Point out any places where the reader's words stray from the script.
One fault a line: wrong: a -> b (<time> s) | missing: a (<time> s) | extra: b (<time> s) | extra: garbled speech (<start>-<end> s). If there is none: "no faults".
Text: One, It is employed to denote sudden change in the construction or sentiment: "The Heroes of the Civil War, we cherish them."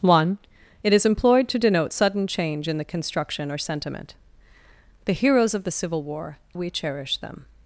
no faults